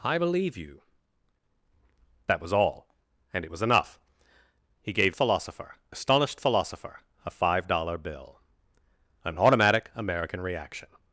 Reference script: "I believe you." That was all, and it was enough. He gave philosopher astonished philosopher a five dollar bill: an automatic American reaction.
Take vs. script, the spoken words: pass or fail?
pass